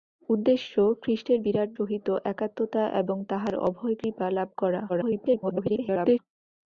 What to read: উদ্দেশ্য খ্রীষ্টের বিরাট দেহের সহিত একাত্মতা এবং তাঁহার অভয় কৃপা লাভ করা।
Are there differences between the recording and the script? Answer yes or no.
yes